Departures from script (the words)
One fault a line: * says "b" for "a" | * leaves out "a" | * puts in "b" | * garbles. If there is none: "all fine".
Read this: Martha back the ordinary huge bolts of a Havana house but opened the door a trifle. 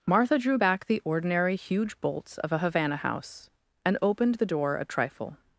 * puts in "drew"
* says "and" for "but"